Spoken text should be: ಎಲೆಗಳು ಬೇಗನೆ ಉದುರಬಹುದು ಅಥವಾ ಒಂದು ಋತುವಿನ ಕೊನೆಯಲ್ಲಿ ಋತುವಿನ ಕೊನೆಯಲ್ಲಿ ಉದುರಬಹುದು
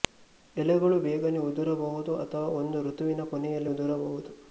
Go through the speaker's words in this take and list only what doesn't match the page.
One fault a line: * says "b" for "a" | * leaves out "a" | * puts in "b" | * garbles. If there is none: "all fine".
* leaves out "ಋತುವಿನ ಕೊನೆಯಲ್ಲಿ"